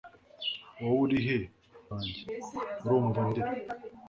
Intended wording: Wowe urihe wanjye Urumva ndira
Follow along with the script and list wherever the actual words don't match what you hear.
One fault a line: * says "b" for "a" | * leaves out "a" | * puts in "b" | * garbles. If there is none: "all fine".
all fine